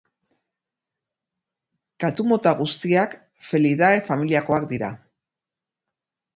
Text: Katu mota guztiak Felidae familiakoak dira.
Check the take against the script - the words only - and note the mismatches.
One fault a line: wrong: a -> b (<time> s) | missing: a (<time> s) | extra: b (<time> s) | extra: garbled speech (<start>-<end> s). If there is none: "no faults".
no faults